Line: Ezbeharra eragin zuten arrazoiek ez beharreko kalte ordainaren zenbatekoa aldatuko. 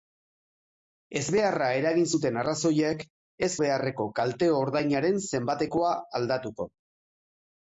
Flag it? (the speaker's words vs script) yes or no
no